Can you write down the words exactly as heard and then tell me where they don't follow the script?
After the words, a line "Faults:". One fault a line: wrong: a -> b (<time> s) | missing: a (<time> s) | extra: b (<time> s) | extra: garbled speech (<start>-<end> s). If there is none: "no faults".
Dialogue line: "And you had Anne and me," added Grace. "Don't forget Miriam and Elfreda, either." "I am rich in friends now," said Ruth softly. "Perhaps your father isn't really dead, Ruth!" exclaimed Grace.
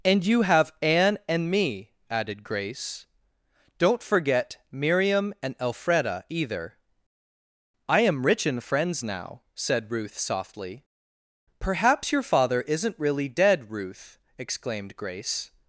"And you have Anne and me," added Grace. "Don't forget Miriam and Elfreda, either." "I am rich in friends now," said Ruth softly. "Perhaps your father isn't really dead, Ruth!" exclaimed Grace.
Faults:
wrong: had -> have (0.4 s)